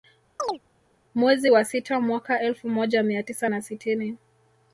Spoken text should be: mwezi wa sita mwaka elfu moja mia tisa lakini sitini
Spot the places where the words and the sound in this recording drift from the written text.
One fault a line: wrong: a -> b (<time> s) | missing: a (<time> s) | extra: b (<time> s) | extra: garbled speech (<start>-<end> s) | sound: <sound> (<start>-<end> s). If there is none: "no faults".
sound: chirp (0.4-0.6 s)
wrong: lakini -> na (3.5 s)